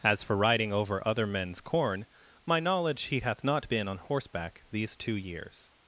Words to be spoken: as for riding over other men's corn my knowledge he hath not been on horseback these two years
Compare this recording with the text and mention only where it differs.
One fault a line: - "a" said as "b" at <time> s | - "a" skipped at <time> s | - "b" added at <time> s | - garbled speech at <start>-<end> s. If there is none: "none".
none